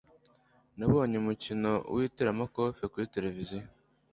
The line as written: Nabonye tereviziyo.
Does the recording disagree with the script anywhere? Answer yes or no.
yes